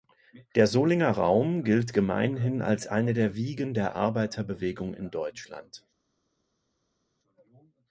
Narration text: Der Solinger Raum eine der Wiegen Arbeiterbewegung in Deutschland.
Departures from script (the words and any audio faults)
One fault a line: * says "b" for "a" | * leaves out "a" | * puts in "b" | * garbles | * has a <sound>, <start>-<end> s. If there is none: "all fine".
* puts in "gilt gemeinhin als"
* puts in "der"